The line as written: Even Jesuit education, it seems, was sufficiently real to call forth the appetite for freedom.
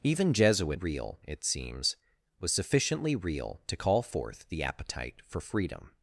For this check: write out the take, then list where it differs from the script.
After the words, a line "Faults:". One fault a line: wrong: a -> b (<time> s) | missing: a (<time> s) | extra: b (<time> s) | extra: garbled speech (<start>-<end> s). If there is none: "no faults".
Even Jesuit real, it seems, was sufficiently real to call forth the appetite for freedom.
Faults:
wrong: education -> real (0.7 s)